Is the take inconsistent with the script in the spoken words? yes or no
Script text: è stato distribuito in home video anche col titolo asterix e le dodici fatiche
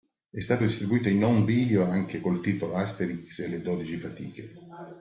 no